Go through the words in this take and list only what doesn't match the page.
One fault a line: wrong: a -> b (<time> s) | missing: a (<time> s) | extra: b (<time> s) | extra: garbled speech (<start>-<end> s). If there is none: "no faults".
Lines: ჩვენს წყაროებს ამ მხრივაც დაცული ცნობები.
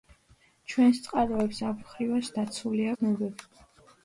no faults